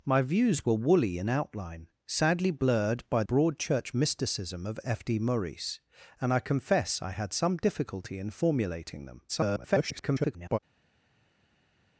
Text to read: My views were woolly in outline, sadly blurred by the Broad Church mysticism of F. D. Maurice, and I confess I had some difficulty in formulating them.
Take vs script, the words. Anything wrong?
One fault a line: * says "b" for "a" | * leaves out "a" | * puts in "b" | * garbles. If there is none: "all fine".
* leaves out "the"
* garbles